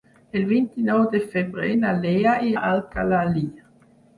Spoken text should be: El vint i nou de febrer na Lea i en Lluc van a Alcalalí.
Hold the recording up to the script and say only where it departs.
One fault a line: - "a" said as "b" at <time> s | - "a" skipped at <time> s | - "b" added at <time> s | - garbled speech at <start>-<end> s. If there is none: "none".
- "en Lluc van" skipped at 2.6 s